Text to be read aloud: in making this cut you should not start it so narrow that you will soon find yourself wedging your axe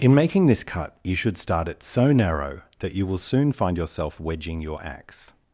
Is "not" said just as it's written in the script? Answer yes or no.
no